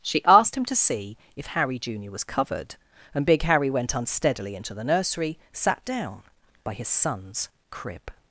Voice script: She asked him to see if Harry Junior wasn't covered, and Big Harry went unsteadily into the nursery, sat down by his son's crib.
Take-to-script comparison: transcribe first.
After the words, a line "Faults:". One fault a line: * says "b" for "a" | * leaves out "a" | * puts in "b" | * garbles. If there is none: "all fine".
She asked him to see if Harry Junior was covered, and Big Harry went unsteadily into the nursery, sat down by his son's crib.
Faults:
* says "was" for "wasn't"